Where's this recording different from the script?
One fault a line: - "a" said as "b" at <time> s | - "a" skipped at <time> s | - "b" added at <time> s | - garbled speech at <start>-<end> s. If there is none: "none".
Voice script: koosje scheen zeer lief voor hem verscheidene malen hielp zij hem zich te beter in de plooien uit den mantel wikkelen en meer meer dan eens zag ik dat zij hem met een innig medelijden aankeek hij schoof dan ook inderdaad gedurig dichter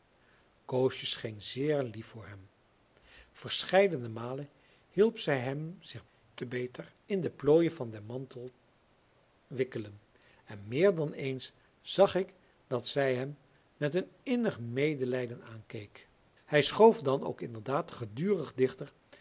- "uit" said as "van" at 7.7 s
- "meer" skipped at 10.9 s